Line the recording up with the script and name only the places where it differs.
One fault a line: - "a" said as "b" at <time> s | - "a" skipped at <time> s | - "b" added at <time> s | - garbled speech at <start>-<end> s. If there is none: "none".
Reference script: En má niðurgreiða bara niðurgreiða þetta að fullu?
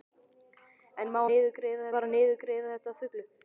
none